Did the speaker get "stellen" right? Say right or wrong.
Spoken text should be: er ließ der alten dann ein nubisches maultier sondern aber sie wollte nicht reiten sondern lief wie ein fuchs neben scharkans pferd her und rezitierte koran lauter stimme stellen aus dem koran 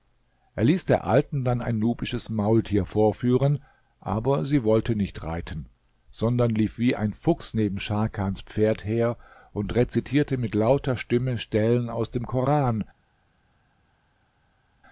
right